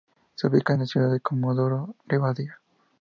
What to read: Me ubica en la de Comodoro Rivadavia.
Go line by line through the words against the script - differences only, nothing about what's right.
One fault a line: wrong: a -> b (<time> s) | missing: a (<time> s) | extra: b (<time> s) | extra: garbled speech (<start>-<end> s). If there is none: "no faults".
wrong: Me -> Se (0.3 s)
extra: ciudad (0.8 s)